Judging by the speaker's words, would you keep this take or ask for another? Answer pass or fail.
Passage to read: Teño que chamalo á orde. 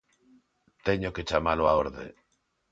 pass